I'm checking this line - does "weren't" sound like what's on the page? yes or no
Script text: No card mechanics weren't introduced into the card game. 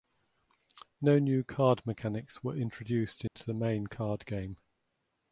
no